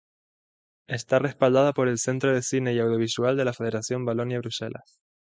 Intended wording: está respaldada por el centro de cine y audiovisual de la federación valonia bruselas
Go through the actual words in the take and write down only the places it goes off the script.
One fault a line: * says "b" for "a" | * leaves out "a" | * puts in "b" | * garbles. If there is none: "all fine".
all fine